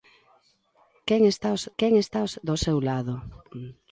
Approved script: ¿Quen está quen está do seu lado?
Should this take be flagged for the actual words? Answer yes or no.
no